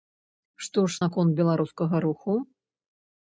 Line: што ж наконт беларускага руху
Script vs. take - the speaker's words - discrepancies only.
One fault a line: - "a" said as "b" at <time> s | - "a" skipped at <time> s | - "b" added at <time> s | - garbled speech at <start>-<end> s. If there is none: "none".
none